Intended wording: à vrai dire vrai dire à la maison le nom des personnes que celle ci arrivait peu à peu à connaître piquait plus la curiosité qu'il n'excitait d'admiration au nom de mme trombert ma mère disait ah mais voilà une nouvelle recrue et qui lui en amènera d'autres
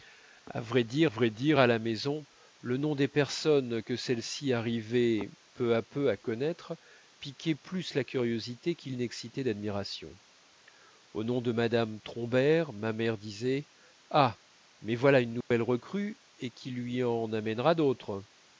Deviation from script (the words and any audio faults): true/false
true